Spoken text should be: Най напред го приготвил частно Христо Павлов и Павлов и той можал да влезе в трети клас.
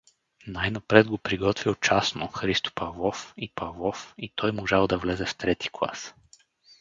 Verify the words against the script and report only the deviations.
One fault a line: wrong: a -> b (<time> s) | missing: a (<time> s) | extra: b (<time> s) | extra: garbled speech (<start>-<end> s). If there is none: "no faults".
no faults